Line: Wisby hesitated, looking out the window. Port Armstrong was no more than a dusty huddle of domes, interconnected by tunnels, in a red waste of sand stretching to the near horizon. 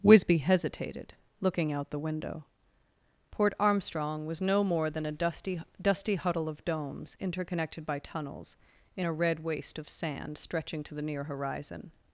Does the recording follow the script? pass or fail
fail